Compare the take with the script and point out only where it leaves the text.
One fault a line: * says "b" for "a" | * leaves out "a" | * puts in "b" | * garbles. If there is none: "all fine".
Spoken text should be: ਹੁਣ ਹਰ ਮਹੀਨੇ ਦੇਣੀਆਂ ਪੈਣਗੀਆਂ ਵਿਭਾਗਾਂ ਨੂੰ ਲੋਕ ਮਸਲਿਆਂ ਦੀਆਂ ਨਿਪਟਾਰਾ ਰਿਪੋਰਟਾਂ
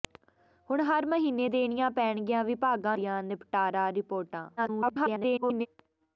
* leaves out "ਨੂੰ ਲੋਕ ਮਸਲਿਆਂ"
* garbles